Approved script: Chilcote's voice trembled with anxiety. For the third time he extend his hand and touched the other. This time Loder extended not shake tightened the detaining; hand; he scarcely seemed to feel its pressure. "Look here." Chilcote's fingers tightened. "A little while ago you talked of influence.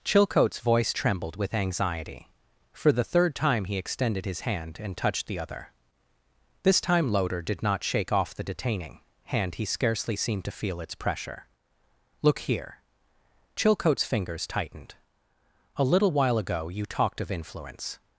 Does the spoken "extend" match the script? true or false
false